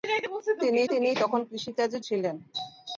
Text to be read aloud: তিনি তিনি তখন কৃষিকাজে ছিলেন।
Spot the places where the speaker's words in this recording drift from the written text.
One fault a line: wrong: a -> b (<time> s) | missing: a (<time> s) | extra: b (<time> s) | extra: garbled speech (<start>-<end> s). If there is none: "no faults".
no faults